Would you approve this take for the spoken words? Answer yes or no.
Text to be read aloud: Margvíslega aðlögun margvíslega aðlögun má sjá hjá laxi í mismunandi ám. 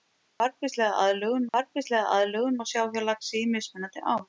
yes